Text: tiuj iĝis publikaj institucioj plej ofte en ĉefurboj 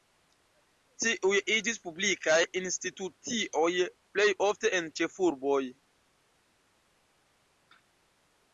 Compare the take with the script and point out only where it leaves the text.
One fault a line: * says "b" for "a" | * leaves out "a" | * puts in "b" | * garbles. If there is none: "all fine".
all fine